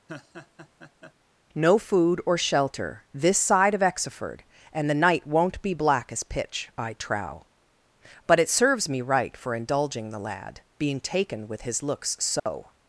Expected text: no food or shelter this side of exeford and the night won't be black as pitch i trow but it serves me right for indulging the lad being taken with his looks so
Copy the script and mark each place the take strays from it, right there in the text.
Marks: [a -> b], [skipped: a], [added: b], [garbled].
no food or shelter this side of exeford and the night won't be black as pitch i trow but it serves me right for indulging the lad being taken with his looks so